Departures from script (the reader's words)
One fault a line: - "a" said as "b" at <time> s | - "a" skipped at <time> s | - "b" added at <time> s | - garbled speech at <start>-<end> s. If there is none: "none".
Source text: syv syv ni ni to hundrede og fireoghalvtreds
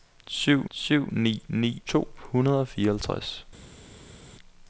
none